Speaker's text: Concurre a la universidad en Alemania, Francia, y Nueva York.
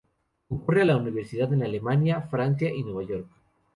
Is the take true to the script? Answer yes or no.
yes